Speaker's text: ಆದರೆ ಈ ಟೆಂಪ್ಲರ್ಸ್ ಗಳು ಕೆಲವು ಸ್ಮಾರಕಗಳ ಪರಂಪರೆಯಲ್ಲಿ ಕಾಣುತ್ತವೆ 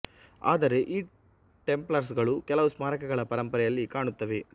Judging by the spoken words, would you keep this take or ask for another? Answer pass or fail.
pass